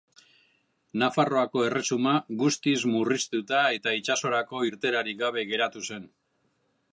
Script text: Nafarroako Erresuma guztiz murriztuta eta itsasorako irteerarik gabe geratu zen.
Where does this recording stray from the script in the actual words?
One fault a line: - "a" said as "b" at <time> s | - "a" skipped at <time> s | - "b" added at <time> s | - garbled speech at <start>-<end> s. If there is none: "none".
none